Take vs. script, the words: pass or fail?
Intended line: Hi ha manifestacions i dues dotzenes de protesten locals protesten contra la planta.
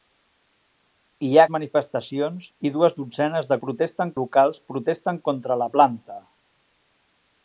pass